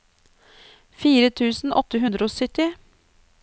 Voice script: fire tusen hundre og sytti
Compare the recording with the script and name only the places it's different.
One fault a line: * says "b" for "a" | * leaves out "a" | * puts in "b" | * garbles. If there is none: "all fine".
* puts in "åtte"